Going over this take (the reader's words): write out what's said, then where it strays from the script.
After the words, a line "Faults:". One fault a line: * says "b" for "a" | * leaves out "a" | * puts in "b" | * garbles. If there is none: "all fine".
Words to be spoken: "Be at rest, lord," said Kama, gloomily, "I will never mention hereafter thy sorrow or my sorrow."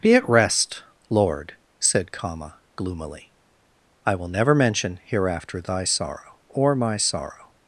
"Be at rest, lord," said Kama, gloomily, "I will never mention hereafter thy sorrow or my sorrow."
Faults:
all fine